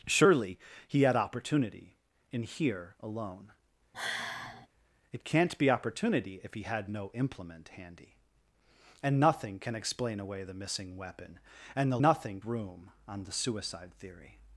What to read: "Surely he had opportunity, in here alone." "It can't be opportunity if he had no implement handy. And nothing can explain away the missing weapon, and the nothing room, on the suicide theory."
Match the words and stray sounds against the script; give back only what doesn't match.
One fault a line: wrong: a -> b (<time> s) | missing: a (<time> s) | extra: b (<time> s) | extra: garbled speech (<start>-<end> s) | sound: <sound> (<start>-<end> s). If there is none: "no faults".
sound: sigh (3.9-4.7 s)